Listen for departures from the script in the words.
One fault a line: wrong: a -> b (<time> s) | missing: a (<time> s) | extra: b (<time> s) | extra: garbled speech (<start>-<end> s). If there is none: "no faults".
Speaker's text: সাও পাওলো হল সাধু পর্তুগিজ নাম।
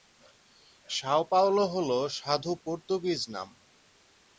no faults